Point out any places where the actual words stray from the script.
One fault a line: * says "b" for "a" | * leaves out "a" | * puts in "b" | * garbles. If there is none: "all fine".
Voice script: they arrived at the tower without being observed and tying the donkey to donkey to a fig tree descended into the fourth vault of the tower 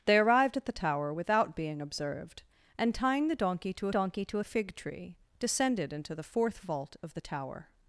all fine